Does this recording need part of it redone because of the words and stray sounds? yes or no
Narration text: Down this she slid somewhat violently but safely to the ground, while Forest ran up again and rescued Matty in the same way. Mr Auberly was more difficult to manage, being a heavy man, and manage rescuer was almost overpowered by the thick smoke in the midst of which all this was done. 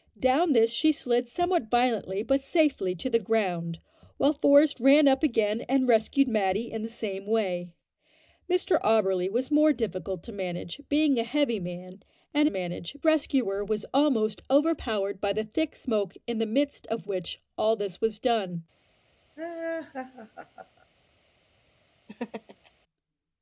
yes